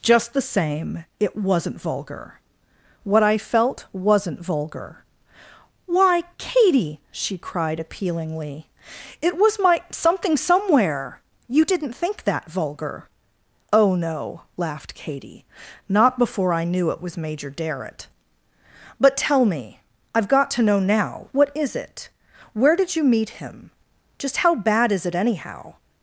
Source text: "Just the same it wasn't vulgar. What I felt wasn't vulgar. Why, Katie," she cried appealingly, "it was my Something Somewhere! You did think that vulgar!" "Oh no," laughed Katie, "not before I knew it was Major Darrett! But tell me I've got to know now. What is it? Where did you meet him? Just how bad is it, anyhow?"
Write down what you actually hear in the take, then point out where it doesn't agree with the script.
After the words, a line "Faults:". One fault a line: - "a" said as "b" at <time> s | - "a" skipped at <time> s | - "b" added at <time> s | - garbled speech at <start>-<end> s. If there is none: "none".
"Just the same it wasn't vulgar. What I felt wasn't vulgar. Why, Katie," she cried appealingly, "it was my Something Somewhere! You didn't think that vulgar!" "Oh no," laughed Katie, "not before I knew it was Major Darrett! But tell me I've got to know now. What is it? Where did you meet him? Just how bad is it, anyhow?"
Faults:
- "did" said as "didn't" at 11.7 s